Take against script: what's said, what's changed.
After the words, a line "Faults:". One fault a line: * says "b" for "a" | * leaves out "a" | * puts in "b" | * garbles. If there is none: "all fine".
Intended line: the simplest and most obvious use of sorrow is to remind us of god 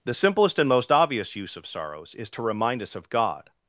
the simplest and most obvious use of sorrows is to remind us of god
Faults:
* says "sorrows" for "sorrow"